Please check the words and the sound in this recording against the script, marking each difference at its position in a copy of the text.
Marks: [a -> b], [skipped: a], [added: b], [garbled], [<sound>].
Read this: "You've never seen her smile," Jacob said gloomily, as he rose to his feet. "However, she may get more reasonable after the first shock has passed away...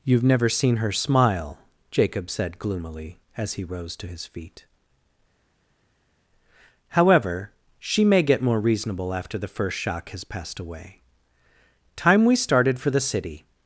"You've never seen her smile," Jacob said gloomily, as he rose to his feet. "However, she may get more reasonable after the first shock has passed away... [added: Time we started for the City]